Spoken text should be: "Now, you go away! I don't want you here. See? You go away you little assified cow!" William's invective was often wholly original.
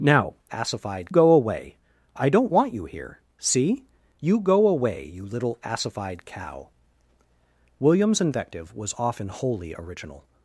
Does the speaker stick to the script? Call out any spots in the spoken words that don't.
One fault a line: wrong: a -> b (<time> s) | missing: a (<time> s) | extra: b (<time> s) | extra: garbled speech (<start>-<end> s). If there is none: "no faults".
wrong: you -> assified (0.5 s)